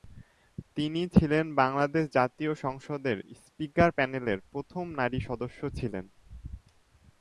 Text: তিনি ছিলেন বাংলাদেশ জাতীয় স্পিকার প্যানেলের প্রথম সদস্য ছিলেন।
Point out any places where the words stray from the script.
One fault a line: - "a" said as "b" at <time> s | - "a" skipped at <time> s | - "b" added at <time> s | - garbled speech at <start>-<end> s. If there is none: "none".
- "সংসদের" added at 2.6 s
- "নারী" added at 5.0 s